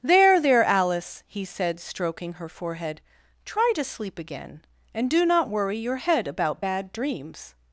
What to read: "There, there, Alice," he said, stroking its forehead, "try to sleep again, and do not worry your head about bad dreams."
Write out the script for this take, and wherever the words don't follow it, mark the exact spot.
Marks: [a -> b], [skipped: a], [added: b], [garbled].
"There, there, Alice," he said, stroking [its -> her] forehead, "try to sleep again, and do not worry your head about bad dreams."